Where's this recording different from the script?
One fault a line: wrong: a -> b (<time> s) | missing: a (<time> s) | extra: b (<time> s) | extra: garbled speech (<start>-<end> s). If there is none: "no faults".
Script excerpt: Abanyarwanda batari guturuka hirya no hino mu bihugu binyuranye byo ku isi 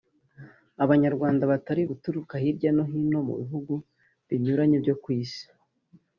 no faults